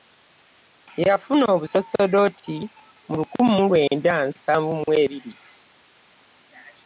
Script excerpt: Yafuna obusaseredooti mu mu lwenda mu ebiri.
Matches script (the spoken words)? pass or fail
fail